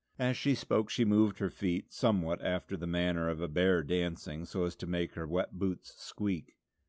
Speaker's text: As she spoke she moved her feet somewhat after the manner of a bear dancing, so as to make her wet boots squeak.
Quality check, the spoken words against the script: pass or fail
pass